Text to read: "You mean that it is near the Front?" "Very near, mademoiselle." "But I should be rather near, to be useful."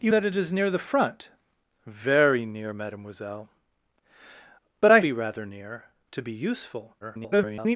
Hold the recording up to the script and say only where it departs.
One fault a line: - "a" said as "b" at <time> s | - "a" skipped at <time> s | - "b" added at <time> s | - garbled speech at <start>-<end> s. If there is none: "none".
- "mean" skipped at 0.1 s
- "should" skipped at 5.0 s
- garbled speech at 7.0-7.8 s